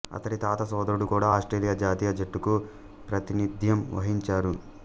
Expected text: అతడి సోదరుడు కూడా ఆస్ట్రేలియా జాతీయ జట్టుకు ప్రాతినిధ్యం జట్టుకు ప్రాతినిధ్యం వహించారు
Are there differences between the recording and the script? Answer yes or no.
yes